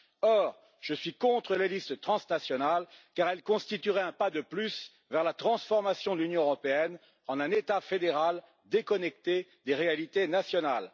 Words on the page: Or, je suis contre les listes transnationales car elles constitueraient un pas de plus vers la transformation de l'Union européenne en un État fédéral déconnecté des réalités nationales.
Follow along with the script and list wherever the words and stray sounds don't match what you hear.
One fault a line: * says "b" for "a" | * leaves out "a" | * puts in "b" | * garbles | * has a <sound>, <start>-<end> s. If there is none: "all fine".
all fine